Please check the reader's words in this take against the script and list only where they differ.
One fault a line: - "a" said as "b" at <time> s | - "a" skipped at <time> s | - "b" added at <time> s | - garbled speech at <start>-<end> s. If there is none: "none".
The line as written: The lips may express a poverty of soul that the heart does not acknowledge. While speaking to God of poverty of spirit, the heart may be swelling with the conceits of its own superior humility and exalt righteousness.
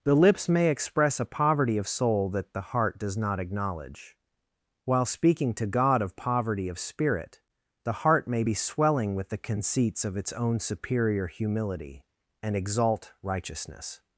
none